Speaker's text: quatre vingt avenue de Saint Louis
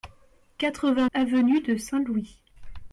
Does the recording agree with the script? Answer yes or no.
yes